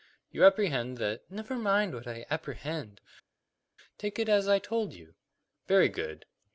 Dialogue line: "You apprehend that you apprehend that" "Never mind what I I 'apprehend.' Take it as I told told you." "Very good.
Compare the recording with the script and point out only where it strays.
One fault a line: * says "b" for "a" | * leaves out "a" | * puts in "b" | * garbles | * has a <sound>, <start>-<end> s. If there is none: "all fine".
* leaves out "you apprehend that"
* leaves out "I"
* leaves out "told"